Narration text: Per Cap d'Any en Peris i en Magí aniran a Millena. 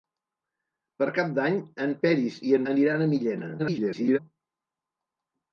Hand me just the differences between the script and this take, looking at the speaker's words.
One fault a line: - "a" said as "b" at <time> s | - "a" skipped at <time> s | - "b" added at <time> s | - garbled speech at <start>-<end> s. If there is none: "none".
- "Magí" skipped at 2.6 s
- garbled speech at 3.6-4.2 s